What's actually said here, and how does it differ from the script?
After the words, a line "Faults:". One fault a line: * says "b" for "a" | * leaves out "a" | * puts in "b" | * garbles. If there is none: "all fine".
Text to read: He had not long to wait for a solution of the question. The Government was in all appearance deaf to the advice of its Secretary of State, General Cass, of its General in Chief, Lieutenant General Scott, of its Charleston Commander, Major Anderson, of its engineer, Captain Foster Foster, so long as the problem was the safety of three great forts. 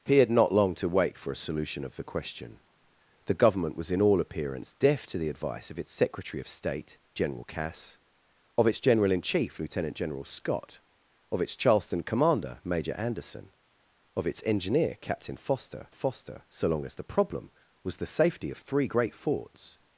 He had not long to wait for a solution of the question. The Government was in all appearance deaf to the advice of its Secretary of State, General Cass, of its General in Chief, Lieutenant General Scott, of its Charleston Commander, Major Anderson, of its engineer, Captain Foster Foster, so long as the problem was the safety of three great forts.
Faults:
all fine